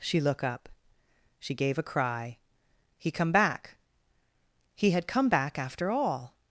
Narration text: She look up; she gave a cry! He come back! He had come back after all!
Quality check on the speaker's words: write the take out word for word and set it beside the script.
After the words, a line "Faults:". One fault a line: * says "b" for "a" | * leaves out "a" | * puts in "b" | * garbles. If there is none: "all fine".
She look up; she gave a cry! He come back! He had come back after all!
Faults:
all fine